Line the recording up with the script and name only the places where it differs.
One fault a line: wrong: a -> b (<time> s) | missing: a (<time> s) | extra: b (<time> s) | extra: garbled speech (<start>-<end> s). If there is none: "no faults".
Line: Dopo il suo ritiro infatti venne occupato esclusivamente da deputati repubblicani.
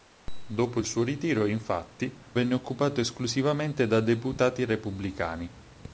no faults